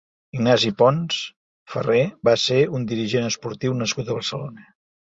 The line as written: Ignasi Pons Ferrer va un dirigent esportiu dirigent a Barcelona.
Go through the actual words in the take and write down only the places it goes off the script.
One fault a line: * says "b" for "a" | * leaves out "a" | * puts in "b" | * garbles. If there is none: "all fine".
* puts in "ser"
* says "nascut" for "dirigent"